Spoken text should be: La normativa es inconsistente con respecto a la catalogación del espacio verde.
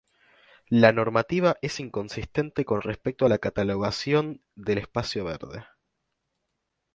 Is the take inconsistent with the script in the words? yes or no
no